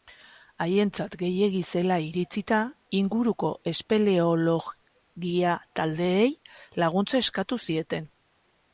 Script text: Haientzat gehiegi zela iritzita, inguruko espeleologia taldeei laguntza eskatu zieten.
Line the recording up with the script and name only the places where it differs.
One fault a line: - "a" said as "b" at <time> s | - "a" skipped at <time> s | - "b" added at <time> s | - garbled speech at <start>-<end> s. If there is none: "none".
none